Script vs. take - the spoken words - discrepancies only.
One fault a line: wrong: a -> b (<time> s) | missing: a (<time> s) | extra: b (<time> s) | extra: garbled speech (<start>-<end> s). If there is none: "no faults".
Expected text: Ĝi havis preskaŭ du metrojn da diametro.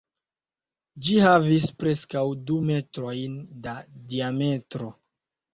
no faults